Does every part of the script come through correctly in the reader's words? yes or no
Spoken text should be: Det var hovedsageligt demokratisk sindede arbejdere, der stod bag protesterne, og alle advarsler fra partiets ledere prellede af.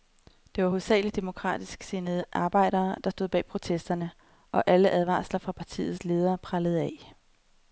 yes